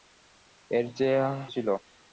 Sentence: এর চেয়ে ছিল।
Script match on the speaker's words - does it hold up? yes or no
yes